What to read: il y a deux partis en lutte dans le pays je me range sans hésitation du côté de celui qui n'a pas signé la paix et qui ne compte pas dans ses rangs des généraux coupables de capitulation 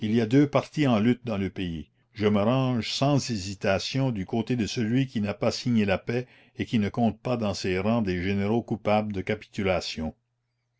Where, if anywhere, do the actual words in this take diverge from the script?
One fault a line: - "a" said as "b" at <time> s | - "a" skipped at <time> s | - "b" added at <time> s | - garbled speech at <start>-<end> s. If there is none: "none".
none